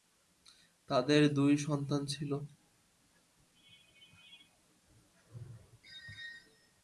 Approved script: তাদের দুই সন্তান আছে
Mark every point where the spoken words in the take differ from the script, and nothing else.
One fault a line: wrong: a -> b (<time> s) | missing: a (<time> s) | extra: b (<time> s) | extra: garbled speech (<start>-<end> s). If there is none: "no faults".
wrong: আছে -> ছিল (2.0 s)